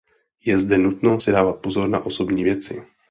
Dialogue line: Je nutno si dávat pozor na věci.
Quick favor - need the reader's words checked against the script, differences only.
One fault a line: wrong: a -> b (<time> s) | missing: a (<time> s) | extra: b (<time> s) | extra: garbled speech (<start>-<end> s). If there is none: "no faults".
extra: zde (0.6 s)
extra: osobní (2.1 s)